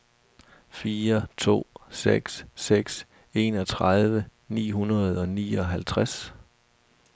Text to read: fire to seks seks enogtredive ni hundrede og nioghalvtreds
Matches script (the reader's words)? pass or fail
pass